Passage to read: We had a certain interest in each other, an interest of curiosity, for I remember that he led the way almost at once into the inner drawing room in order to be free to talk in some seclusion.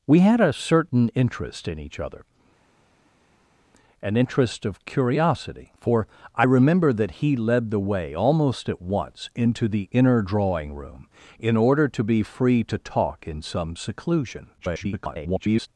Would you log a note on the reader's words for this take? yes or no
yes